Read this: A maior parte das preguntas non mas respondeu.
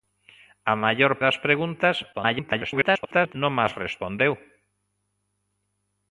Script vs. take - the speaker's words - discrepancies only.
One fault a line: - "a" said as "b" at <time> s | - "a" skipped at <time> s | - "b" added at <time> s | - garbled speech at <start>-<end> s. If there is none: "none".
- "parte" skipped at 1.1 s
- garbled speech at 2.1-3.3 s